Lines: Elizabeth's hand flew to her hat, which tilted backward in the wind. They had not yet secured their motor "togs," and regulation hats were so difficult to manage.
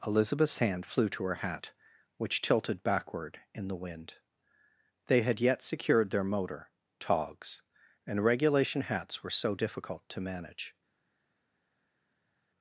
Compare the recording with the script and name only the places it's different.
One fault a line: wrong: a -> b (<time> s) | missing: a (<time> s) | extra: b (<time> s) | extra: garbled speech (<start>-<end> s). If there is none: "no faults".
missing: not (5.4 s)